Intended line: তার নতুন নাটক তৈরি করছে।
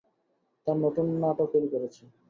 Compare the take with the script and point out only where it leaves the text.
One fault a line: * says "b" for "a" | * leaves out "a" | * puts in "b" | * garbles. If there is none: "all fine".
all fine